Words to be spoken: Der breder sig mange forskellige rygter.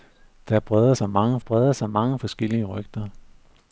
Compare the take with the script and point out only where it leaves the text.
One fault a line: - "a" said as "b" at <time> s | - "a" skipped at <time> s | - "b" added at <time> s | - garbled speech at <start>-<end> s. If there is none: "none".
- "breder sig mange" added at 1.4 s